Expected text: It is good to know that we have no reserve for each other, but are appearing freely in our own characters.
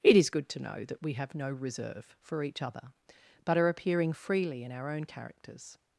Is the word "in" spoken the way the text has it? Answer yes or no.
yes